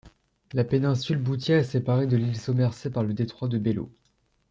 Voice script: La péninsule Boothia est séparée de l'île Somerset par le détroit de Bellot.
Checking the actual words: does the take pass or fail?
pass